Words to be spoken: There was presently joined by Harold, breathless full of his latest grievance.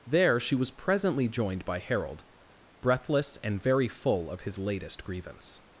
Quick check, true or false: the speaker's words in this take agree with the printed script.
false